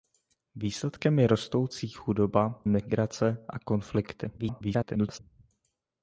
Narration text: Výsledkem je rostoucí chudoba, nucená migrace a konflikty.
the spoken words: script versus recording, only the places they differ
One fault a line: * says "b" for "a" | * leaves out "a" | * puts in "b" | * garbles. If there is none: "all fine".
* leaves out "nucená"
* garbles